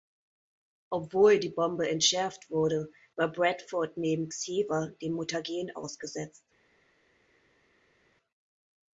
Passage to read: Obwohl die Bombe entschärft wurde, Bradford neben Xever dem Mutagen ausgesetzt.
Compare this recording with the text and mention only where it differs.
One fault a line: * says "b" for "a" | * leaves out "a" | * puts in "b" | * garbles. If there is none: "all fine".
* puts in "war"